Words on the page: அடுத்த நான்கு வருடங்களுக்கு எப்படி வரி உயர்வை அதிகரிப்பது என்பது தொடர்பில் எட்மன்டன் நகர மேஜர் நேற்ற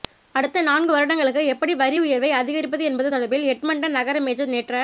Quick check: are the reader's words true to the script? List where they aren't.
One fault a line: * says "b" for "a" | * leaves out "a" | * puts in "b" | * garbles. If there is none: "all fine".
all fine